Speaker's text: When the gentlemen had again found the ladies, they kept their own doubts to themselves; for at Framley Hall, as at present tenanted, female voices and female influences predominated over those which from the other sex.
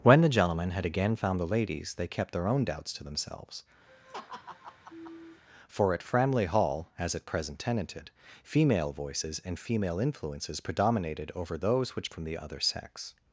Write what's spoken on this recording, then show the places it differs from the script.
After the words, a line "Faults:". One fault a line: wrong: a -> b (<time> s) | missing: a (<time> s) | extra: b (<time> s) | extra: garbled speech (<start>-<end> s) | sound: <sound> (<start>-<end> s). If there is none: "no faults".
When the gentlemen had again found the ladies, they kept their own doubts to themselves; for at Framley Hall, as at present tenanted, female voices and female influences predominated over those which from the other sex.
Faults:
sound: laugh (3.9-5.4 s)